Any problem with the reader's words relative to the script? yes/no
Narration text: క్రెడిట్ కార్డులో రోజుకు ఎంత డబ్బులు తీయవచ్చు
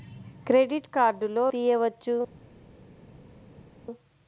yes